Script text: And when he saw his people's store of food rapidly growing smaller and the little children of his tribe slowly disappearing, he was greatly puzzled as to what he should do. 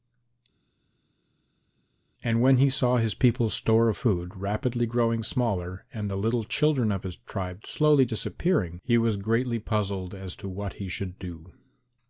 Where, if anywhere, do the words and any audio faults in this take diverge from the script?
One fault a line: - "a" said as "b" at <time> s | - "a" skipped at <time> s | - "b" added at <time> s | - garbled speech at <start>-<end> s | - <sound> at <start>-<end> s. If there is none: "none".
none